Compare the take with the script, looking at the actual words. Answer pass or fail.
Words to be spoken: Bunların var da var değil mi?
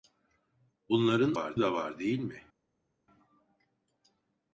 pass